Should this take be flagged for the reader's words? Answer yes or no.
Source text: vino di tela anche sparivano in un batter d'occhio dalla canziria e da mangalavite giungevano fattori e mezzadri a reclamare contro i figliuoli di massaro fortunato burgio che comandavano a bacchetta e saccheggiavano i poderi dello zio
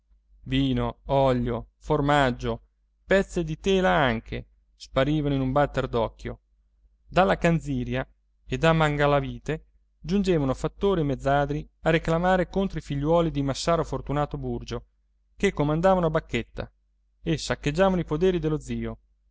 yes